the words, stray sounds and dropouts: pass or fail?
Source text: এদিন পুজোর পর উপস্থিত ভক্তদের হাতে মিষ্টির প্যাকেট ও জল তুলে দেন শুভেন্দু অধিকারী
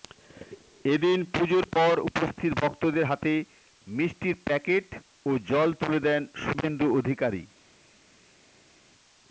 pass